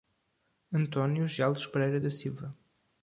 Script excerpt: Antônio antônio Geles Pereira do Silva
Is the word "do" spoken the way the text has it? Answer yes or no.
no